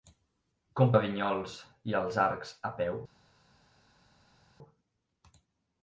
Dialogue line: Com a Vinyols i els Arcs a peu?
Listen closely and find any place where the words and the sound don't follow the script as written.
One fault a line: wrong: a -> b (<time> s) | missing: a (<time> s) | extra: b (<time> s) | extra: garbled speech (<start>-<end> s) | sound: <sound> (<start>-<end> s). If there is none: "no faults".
no faults